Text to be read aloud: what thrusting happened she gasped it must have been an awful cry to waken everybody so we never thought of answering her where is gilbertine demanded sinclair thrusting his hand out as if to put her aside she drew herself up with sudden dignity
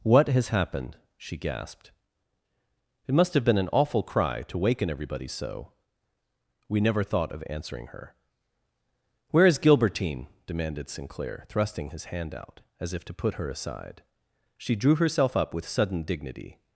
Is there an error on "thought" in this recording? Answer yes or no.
no